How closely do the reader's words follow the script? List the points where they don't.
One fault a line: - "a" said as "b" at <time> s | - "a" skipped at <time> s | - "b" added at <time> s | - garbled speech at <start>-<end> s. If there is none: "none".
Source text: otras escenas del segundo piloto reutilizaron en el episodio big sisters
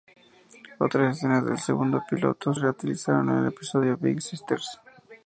none